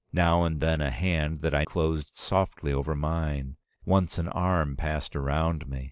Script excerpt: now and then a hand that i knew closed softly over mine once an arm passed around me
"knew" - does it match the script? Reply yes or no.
no